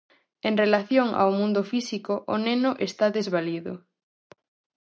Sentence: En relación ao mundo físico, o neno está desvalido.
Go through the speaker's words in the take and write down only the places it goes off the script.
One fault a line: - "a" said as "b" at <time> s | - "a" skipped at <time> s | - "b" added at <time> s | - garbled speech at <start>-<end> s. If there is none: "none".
none